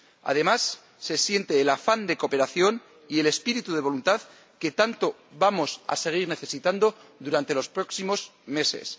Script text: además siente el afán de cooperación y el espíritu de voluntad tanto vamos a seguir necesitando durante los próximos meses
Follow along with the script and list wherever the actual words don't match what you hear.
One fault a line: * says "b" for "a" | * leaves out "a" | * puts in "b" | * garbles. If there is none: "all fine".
* puts in "se"
* puts in "que"